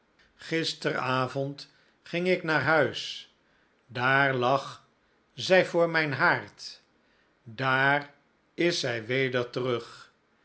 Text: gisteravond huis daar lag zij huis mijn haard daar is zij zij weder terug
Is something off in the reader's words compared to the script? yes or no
yes